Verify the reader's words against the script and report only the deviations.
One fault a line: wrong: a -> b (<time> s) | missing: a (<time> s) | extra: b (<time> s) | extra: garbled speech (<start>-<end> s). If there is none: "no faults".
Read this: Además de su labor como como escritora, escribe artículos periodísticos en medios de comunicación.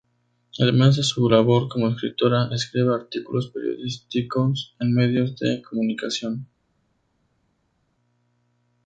missing: como (1.9 s)